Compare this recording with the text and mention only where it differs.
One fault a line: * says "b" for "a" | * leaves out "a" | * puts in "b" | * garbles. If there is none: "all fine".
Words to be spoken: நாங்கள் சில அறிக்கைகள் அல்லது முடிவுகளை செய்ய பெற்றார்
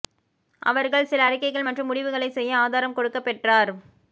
* says "அவர்கள்" for "நாங்கள்"
* says "மற்றும்" for "அல்லது"
* puts in "ஆதாரம் கொடுக்க"